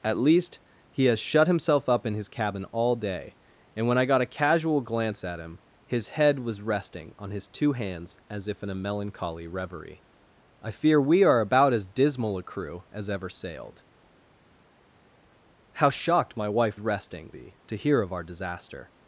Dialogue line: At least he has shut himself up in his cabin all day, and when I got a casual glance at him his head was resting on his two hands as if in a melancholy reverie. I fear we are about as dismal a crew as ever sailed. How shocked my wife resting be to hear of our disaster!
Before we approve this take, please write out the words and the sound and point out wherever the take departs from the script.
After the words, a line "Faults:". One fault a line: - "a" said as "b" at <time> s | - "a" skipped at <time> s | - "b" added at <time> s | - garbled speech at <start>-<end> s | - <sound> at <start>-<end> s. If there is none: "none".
At least he has shut himself up in his cabin all day, and when I got a casual glance at him his head was resting on his two hands as if in a melancholy reverie. I fear we are about as dismal a crew as ever sailed. How shocked my wife resting be to hear of our disaster!
Faults:
none